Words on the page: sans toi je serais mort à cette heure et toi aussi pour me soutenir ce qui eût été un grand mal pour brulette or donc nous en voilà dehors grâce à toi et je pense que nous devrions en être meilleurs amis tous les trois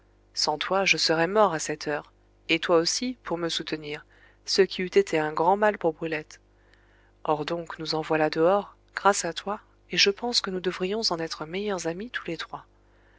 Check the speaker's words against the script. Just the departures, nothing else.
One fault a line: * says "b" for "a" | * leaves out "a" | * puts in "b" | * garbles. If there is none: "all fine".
all fine